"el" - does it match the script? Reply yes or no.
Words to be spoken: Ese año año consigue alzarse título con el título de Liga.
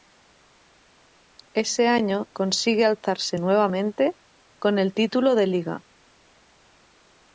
yes